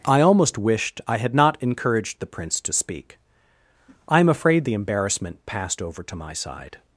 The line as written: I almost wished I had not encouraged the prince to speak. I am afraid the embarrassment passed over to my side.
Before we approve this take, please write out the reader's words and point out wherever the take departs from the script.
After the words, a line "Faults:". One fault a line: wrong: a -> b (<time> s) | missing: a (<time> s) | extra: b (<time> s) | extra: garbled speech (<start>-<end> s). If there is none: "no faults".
I almost wished I had not encouraged the prince to speak. I am afraid the embarrassment passed over to my side.
Faults:
no faults